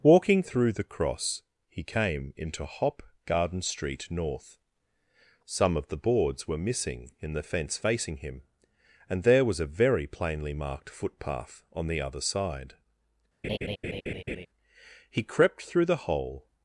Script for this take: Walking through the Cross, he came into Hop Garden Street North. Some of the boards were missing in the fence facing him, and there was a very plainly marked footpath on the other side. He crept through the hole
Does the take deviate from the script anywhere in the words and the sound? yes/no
yes